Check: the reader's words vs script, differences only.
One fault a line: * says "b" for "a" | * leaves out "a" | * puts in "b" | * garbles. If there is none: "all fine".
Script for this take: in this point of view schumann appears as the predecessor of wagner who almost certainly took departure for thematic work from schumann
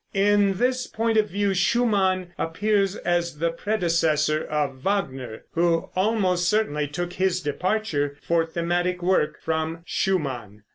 * puts in "his"